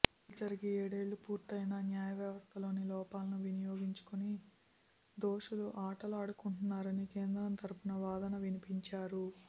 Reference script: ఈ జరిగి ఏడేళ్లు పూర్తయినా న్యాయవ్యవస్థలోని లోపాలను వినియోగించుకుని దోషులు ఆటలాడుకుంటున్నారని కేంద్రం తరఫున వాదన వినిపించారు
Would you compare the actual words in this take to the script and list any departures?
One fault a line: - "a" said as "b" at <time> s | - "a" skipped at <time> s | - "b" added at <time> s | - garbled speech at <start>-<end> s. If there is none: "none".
none